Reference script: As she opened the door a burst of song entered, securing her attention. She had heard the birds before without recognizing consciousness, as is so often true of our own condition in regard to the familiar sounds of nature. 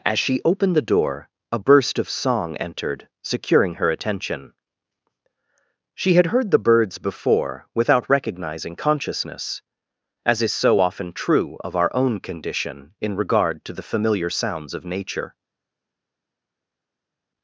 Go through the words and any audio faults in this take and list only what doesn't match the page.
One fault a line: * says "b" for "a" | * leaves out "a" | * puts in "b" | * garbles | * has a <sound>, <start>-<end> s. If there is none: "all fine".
all fine